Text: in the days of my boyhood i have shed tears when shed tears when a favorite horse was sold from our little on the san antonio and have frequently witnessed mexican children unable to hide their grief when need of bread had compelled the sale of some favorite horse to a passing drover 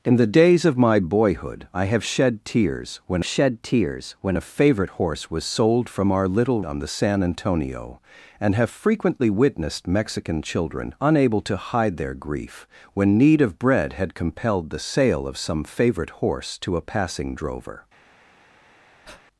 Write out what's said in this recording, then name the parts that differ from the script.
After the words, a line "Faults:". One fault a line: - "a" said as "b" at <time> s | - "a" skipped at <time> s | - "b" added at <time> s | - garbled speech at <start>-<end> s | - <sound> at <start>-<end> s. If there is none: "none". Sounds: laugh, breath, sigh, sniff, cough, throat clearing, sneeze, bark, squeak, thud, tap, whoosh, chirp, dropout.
in the days of my boyhood i have shed tears when shed tears when a favorite horse was sold from our little on the san antonio and have frequently witnessed mexican children unable to hide their grief when need of bread had compelled the sale of some favorite horse to a passing drover
Faults:
- breath at 19.0-19.2 s